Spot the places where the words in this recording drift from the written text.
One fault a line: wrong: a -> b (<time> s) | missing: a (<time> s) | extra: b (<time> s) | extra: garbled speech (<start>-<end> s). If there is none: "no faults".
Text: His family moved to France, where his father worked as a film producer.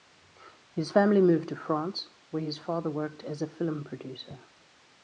no faults